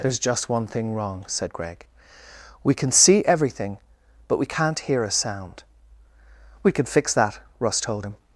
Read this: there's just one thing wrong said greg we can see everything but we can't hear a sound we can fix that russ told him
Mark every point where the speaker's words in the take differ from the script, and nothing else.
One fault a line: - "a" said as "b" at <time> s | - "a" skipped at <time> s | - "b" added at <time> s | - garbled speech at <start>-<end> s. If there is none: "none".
none